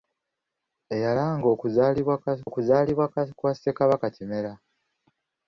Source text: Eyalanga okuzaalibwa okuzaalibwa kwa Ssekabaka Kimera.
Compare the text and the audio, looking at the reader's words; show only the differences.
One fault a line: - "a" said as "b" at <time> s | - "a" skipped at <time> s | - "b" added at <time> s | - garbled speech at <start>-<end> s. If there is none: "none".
none